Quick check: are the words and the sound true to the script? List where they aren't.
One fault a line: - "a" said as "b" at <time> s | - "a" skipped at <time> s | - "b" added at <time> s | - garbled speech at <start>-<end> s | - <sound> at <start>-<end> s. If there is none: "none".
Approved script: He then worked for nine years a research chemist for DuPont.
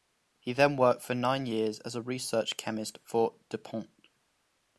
- "as" added at 1.8 s